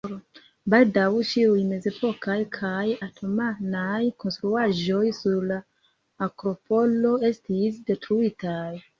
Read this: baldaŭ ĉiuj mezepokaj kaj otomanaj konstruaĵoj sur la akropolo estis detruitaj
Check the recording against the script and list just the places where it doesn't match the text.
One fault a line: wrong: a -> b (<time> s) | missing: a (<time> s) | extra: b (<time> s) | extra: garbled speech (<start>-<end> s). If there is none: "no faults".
no faults